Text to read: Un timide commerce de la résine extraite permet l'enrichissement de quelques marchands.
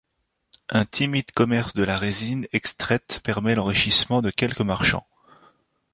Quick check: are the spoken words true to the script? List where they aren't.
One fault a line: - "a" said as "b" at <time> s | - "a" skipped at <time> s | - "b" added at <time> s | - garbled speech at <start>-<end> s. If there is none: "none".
none